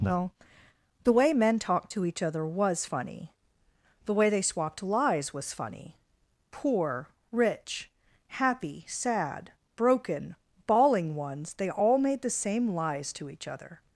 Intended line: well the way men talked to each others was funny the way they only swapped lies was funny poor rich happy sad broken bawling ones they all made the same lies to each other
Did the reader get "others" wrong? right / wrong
wrong